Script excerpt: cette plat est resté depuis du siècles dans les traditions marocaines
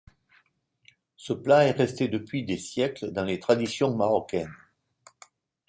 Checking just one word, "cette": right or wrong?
wrong